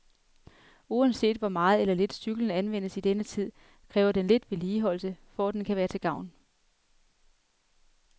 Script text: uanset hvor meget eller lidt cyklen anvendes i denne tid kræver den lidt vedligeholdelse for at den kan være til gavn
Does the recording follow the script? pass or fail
pass